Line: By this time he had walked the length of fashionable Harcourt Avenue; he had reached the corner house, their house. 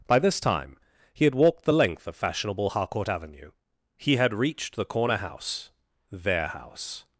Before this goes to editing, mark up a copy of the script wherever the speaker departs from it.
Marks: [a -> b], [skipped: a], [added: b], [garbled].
By this time he had walked the length of fashionable Harcourt Avenue; he had reached the corner house, their house.